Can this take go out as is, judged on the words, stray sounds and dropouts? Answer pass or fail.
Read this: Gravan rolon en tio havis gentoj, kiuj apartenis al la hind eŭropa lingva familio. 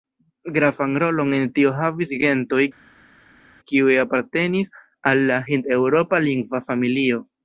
pass